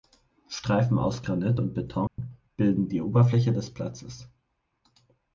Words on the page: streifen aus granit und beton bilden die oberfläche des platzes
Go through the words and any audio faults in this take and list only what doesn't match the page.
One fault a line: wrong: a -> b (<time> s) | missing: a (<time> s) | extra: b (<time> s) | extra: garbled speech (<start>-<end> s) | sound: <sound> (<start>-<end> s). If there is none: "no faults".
sound: dropout (2.1-2.2 s)